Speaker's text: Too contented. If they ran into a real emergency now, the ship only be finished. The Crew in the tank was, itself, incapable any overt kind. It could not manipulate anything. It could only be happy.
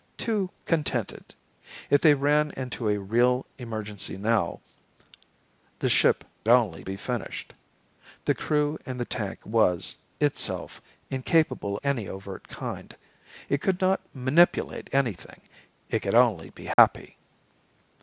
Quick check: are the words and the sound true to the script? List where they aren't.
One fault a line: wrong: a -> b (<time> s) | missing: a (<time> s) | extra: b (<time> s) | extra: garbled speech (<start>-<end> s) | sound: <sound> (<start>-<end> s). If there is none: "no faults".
sound: dropout (16.7-16.8 s)